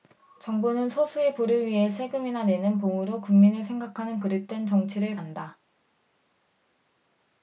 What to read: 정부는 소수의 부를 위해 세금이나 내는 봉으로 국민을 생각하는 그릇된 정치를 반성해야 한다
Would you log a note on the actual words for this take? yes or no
yes